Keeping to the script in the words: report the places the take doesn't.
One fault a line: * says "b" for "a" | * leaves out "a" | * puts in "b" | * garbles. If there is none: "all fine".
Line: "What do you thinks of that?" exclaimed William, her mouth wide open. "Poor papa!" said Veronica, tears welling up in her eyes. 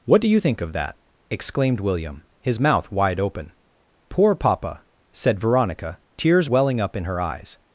* says "think" for "thinks"
* says "his" for "her"